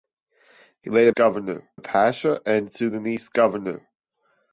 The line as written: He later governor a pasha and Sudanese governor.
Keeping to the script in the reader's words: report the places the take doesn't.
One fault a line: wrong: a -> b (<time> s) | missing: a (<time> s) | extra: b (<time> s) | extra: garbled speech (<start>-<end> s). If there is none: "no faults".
no faults